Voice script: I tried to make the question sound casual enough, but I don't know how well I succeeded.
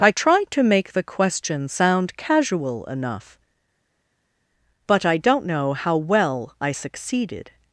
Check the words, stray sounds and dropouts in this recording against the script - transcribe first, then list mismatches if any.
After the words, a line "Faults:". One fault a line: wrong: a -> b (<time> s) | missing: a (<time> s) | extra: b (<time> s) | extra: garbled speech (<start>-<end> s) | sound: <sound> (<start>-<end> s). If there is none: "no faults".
I tried to make the question sound casual enough, but I don't know how well I succeeded.
Faults:
no faults